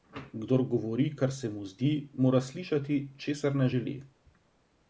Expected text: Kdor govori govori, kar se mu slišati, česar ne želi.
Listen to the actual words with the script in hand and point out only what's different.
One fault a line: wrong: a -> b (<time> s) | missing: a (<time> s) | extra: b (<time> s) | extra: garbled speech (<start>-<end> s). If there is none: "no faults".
missing: govori (1.1 s)
extra: zdi mora (1.7 s)